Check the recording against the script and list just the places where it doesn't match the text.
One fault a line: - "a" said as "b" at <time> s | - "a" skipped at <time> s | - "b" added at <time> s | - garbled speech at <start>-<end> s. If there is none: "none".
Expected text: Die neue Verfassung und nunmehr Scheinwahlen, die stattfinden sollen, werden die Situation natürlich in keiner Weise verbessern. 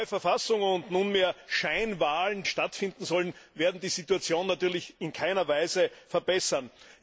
- "die" skipped at 2.4 s